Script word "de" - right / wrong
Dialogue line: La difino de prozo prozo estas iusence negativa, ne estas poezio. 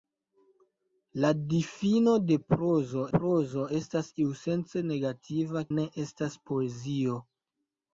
right